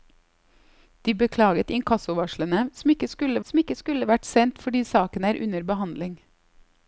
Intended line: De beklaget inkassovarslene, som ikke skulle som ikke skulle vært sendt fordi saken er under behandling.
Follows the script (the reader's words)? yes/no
yes